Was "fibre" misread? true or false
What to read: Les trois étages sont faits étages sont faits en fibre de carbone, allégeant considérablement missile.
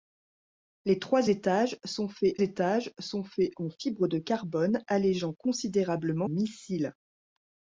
false